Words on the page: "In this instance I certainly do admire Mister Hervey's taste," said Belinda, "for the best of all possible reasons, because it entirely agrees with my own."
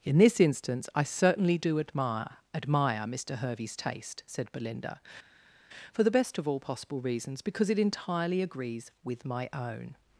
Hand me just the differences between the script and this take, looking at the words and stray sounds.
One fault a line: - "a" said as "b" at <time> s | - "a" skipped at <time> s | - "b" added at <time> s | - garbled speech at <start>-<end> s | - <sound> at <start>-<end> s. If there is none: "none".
- "admire" added at 2.5 s